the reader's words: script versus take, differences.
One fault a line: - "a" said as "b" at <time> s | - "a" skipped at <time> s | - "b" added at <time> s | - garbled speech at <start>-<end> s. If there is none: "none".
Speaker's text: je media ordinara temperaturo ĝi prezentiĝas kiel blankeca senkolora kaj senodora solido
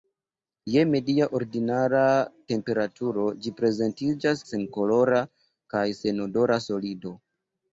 - "kiel blankeca" skipped at 4.4 s